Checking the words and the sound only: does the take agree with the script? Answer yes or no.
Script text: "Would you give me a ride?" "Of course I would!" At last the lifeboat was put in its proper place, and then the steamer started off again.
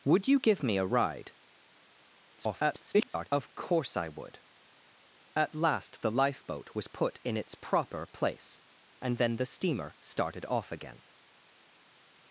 no